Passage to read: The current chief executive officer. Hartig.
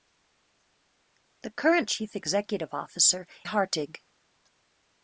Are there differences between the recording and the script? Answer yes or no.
no